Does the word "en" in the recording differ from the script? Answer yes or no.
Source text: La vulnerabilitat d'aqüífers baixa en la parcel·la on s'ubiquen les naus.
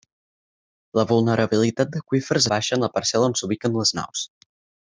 no